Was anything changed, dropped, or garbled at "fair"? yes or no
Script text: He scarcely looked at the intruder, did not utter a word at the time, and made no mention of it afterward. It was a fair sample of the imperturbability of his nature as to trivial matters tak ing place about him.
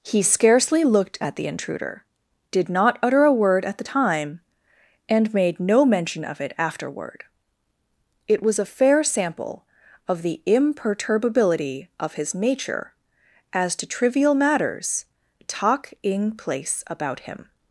no